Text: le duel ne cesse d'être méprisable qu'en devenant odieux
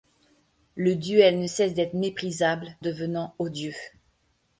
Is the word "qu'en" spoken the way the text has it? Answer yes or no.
no